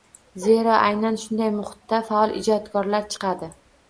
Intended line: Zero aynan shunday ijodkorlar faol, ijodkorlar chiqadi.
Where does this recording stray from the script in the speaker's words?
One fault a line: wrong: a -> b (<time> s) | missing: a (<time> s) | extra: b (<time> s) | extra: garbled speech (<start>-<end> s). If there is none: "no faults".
wrong: ijodkorlar -> muhitda (1.6 s)